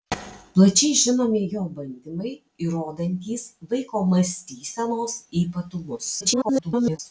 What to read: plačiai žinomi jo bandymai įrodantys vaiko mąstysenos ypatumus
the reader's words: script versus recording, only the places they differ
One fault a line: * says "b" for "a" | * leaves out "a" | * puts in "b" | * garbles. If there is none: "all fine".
* garbles